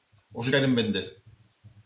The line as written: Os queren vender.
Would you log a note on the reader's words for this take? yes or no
no